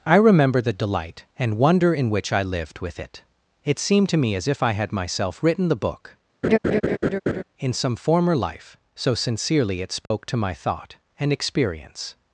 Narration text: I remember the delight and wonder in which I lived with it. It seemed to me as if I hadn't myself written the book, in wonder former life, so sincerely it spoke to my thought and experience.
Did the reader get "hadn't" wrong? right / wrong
wrong